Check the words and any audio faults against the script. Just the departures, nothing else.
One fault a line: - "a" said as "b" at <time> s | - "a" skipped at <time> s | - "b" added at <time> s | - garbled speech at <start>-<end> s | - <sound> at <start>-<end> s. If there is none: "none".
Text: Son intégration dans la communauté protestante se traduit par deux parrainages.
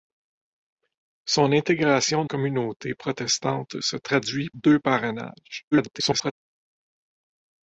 - "dans la" skipped at 2.2 s
- "par" skipped at 4.5 s
- garbled speech at 5.7-6.3 s